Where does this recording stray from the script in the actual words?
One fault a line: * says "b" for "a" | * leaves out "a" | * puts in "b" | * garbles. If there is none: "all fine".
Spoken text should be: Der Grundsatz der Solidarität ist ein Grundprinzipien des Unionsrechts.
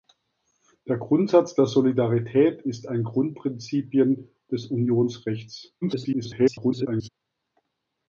* garbles